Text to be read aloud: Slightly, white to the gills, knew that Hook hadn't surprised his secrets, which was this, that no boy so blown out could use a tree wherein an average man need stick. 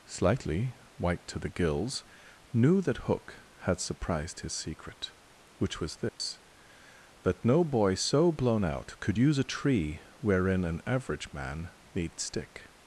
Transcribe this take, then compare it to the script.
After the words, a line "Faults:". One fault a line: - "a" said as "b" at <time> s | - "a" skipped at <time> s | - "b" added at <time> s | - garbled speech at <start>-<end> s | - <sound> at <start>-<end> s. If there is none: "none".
Slightly, white to the gills, knew that Hook had surprised his secret, which was this, that no boy so blown out could use a tree wherein an average man need stick.
Faults:
- "hadn't" said as "had" at 3.6 s
- "secrets" said as "secret" at 4.5 s
- dropout at 6.1-6.2 s